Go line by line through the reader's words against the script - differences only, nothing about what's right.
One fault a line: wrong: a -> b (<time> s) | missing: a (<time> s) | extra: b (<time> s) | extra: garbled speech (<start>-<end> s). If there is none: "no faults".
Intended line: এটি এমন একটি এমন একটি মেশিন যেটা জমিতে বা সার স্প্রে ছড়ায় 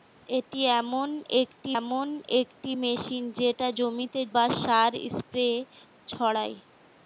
no faults